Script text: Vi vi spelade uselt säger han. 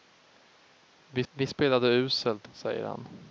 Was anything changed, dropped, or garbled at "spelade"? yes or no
no